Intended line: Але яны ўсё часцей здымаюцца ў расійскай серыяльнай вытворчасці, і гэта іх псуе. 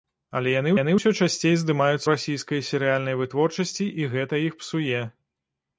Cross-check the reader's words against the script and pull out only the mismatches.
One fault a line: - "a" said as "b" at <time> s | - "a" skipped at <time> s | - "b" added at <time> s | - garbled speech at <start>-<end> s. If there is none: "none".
- "яны" added at 0.7 s
- "ў" skipped at 2.0 s